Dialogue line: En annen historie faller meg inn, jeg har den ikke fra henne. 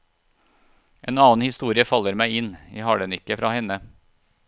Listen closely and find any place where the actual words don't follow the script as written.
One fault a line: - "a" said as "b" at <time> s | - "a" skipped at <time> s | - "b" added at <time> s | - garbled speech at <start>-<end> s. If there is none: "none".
none